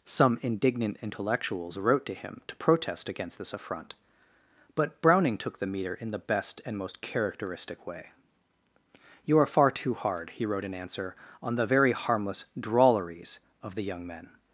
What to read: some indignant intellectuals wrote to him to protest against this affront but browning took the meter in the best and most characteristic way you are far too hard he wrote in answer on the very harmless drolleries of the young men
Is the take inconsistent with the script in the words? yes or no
no